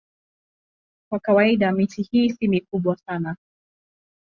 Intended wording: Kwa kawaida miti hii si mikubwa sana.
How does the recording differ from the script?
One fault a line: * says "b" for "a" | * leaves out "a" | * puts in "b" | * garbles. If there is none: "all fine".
all fine